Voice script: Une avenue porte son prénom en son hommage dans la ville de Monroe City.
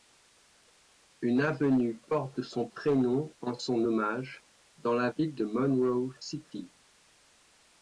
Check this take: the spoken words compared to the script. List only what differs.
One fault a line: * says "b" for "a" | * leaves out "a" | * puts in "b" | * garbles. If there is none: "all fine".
all fine